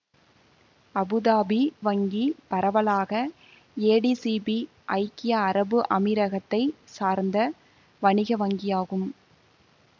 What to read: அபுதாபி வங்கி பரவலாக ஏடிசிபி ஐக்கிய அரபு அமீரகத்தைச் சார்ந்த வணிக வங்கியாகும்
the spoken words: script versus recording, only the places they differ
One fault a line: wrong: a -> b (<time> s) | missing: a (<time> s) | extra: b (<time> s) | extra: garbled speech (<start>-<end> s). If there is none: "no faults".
no faults